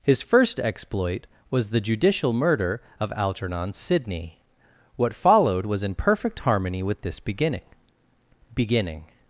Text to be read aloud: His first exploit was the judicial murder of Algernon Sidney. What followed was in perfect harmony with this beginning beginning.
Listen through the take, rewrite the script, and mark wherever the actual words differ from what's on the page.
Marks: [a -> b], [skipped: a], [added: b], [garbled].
His first exploit was the judicial murder of Algernon Sidney. What followed was in perfect harmony with this beginning beginning.